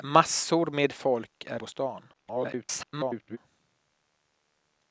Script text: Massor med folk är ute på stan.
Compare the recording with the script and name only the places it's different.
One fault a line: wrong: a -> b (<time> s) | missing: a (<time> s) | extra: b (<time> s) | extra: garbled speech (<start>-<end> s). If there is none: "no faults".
missing: ute (1.6 s)
extra: garbled speech (2.1-3.4 s)